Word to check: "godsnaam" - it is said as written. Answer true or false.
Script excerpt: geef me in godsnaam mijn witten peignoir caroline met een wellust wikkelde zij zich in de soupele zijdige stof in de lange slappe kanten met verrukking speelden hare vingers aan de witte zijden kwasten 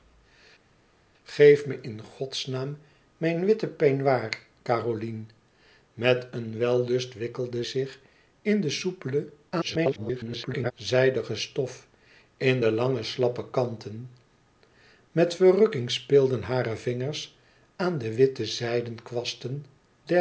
true